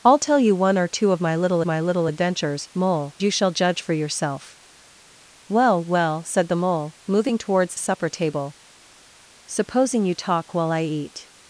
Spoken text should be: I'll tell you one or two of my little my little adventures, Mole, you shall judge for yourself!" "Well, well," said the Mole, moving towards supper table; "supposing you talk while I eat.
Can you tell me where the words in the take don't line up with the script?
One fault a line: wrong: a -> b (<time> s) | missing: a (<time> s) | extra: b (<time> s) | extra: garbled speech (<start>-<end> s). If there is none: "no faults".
no faults